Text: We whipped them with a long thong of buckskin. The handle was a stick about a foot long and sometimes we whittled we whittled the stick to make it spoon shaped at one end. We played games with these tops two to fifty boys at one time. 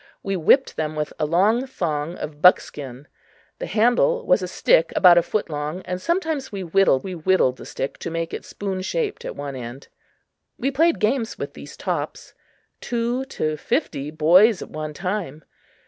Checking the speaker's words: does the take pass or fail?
pass